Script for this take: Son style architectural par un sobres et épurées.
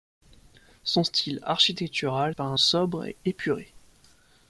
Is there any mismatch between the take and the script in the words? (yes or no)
no